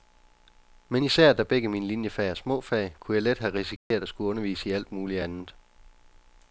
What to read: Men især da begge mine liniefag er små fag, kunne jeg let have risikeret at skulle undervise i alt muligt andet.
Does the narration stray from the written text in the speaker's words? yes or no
no